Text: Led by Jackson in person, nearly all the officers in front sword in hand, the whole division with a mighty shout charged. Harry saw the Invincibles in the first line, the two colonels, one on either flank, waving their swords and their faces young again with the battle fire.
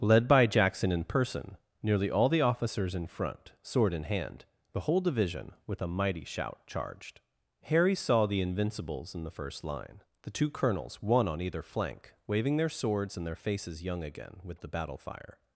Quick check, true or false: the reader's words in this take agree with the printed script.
true